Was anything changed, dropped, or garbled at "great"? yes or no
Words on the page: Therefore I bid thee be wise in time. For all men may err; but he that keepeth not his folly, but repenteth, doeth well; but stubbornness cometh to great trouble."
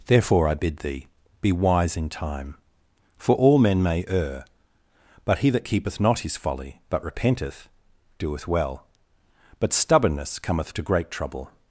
no